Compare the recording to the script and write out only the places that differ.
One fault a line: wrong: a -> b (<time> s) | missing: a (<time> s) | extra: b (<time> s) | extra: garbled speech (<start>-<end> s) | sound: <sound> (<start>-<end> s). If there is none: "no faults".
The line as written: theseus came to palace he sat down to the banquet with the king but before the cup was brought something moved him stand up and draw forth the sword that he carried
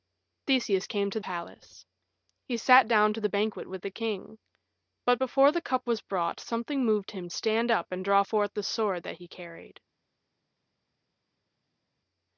no faults